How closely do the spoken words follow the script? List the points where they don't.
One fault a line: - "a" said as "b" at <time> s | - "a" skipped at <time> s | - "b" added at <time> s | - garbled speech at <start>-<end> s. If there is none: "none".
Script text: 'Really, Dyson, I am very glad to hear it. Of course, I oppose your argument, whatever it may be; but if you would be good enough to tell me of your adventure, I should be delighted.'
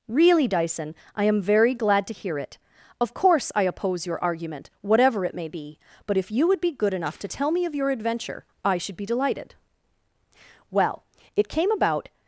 - "Well it came about" added at 10.7 s